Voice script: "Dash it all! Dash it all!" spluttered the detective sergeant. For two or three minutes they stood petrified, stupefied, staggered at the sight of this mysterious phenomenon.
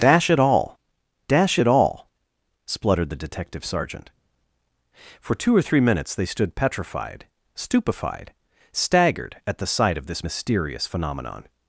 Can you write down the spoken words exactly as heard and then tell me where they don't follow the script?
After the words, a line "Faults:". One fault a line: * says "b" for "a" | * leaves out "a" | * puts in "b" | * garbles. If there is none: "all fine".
"Dash it all! Dash it all!" spluttered the detective sergeant. For two or three minutes they stood petrified, stupefied, staggered at the sight of this mysterious phenomenon.
Faults:
all fine